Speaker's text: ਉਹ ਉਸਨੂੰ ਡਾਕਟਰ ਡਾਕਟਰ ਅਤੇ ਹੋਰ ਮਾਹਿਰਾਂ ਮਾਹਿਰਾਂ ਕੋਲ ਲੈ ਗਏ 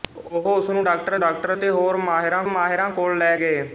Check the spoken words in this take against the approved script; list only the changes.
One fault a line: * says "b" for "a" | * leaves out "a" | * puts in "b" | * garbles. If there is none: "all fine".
all fine